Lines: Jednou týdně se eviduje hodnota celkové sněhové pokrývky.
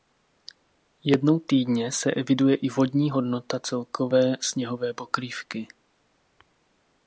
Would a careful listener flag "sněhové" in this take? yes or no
no